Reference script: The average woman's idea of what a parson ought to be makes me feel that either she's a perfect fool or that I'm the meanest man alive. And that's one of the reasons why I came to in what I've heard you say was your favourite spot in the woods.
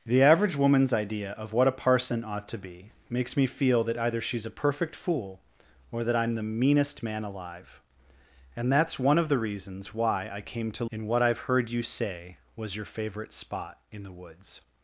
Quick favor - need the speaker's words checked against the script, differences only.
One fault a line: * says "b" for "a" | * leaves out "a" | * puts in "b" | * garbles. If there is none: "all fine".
all fine